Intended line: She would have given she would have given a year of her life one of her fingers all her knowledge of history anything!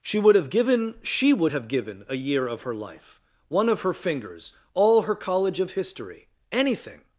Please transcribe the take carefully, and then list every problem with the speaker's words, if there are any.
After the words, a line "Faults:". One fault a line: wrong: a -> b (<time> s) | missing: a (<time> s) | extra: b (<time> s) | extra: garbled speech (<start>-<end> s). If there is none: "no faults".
She would have given she would have given a year of her life one of her fingers all her college of history anything!
Faults:
wrong: knowledge -> college (5.1 s)